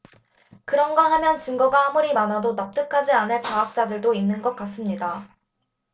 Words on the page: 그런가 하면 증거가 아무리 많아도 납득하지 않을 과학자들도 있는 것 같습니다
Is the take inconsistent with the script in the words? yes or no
no